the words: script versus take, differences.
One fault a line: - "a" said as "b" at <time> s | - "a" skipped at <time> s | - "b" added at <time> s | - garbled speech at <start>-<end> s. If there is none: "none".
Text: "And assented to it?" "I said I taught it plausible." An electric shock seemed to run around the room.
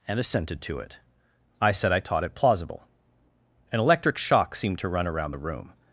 none